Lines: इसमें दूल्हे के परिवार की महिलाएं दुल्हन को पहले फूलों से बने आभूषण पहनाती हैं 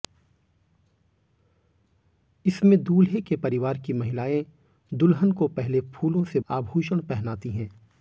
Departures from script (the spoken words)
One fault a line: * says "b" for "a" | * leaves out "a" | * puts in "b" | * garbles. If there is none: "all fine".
* leaves out "बने"